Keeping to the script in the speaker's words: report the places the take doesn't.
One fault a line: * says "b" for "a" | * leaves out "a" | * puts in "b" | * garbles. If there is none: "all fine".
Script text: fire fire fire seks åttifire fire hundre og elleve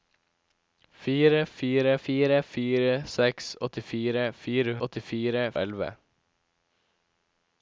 * puts in "fire"
* says "åttifire" for "hundre"